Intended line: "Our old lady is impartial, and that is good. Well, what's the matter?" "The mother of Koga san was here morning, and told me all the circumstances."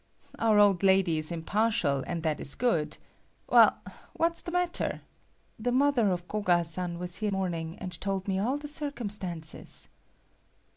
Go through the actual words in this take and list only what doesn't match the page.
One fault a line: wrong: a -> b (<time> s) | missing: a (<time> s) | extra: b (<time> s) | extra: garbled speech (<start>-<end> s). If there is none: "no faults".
no faults